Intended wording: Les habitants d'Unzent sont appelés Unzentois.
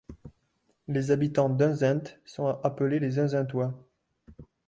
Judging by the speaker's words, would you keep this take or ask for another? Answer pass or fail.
fail